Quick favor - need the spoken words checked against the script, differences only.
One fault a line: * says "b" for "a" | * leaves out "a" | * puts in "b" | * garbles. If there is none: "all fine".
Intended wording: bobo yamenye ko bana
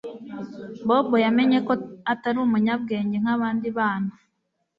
* puts in "atari umunyabwenge nkabandi"